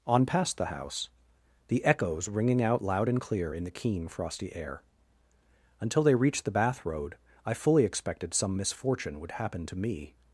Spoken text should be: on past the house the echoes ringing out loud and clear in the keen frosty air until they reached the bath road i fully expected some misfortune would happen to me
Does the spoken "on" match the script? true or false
true